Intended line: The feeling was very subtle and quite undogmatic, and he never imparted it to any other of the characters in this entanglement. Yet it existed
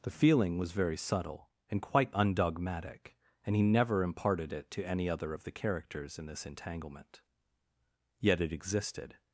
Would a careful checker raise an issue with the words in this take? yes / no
no